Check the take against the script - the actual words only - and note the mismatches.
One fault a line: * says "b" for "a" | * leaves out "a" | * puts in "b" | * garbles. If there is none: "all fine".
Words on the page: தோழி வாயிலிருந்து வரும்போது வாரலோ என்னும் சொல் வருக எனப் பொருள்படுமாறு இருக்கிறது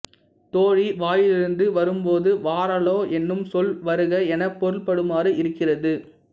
all fine